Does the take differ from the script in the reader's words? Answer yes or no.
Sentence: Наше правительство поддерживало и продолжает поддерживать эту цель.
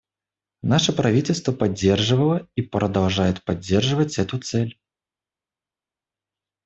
no